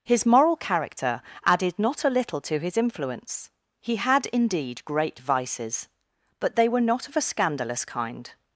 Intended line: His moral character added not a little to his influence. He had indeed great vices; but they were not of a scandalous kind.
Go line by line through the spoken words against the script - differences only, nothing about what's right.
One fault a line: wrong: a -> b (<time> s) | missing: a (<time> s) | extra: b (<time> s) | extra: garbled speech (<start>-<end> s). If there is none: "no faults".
no faults